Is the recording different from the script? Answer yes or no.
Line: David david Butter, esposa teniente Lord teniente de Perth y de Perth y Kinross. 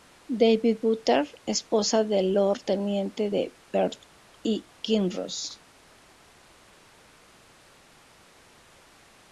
yes